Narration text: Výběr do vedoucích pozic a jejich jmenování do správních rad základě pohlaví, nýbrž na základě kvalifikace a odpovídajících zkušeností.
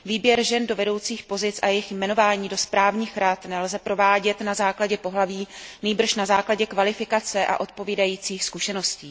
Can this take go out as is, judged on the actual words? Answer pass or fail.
fail